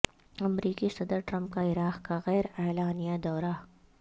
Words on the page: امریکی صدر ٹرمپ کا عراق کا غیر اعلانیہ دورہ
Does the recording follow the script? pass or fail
pass